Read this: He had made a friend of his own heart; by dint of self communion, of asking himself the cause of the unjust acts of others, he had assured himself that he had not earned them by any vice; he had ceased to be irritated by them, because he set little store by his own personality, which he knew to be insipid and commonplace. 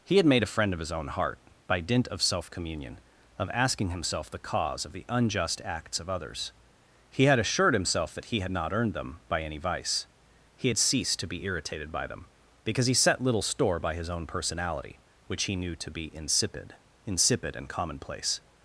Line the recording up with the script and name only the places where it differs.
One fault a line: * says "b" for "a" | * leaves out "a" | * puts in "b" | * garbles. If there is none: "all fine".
* puts in "insipid"